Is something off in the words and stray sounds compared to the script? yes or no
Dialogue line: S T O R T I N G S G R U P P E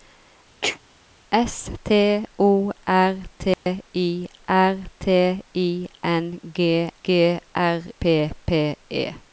yes